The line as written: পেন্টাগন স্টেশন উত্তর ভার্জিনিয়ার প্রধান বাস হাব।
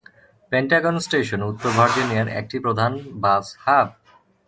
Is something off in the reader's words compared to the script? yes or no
yes